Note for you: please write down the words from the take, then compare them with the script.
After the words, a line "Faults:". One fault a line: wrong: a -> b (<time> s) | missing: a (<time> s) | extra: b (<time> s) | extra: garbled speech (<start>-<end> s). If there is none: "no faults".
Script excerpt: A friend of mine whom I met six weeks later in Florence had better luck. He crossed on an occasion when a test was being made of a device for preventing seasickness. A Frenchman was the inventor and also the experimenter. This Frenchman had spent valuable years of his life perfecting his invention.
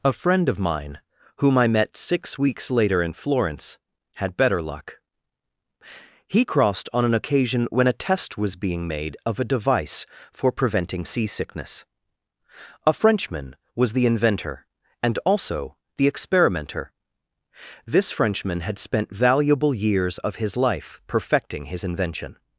A friend of mine whom I met six weeks later in Florence had better luck. He crossed on an occasion when a test was being made of a device for preventing seasickness. A Frenchman was the inventor and also the experimenter. This Frenchman had spent valuable years of his life perfecting his invention.
Faults:
no faults